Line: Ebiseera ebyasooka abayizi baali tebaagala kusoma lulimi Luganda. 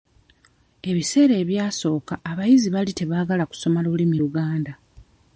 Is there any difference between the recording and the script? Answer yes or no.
no